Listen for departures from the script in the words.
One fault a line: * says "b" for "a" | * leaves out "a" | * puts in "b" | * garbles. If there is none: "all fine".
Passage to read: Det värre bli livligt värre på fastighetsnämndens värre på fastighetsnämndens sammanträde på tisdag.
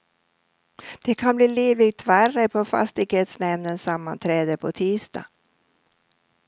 * says "kan" for "värre"
* leaves out "värre på fastighetsnämndens"